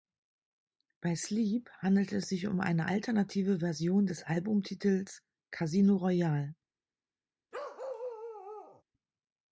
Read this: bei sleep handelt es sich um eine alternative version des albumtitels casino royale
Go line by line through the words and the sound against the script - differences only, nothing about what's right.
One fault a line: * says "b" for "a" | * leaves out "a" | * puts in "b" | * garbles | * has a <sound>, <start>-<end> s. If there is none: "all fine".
* has a bark, 7.5-8.8 s